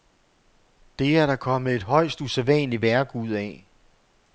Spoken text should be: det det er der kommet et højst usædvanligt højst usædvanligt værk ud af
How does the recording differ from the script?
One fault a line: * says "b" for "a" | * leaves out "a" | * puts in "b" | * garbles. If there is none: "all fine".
* leaves out "det"
* leaves out "højst usædvanligt"